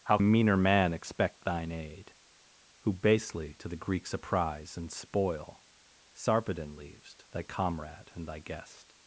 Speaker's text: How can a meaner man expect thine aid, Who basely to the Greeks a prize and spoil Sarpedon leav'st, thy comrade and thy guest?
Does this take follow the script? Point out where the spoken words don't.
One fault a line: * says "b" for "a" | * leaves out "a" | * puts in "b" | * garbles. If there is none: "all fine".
* leaves out "can"